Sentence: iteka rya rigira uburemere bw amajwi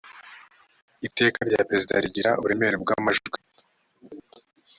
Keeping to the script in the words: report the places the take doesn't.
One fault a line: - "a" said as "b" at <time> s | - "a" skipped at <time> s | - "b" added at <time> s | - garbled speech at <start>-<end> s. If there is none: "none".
- "perezida" added at 1.7 s